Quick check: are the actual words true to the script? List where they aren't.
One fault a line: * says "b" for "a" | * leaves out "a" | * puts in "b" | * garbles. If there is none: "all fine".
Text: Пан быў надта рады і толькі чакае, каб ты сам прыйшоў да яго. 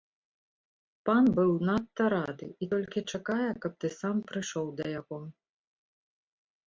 all fine